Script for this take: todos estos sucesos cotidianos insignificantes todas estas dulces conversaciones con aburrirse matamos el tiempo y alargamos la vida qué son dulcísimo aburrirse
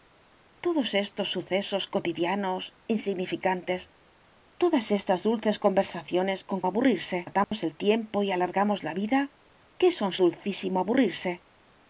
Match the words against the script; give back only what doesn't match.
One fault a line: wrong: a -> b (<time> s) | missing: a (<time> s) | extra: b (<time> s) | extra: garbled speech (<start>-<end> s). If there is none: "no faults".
no faults